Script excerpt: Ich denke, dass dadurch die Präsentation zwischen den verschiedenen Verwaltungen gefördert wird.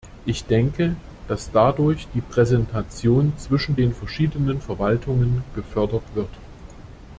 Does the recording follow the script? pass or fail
pass